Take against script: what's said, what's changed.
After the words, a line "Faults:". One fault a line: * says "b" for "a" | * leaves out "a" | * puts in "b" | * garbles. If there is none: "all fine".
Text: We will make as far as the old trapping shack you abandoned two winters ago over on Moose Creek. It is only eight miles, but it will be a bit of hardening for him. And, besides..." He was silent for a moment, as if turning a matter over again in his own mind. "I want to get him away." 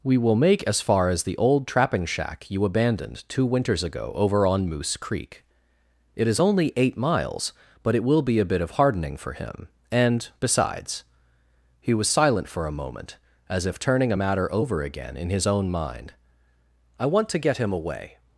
We will make as far as the old trapping shack you abandoned two winters ago over on Moose Creek. It is only eight miles, but it will be a bit of hardening for him. And, besides..." He was silent for a moment, as if turning a matter over again in his own mind. "I want to get him away."
Faults:
all fine